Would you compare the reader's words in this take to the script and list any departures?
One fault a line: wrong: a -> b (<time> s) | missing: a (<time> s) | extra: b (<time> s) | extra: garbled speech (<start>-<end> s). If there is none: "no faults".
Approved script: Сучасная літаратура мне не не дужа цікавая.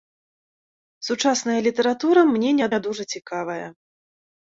no faults